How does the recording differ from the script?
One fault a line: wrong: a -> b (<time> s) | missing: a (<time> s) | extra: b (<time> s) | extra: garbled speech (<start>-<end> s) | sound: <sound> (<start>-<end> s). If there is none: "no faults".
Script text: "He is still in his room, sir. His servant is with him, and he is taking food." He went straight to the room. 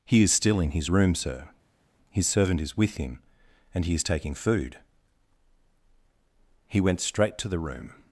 no faults